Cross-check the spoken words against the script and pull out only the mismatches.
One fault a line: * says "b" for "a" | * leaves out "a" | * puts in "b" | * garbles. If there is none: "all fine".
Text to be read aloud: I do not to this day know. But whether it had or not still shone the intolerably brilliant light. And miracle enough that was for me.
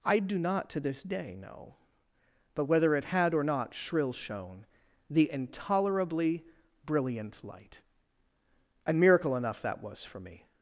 * says "shrill" for "still"